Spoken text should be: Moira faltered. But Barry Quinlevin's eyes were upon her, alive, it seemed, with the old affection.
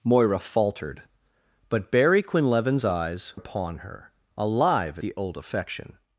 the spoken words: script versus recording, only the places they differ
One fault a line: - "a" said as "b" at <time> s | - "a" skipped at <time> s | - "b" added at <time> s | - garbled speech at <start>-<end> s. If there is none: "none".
- "were" skipped at 3.3 s
- "it seemed with" skipped at 5.0 s